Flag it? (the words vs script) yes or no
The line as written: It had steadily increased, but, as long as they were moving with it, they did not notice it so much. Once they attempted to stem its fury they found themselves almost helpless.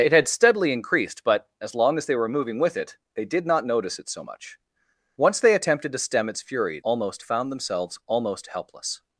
yes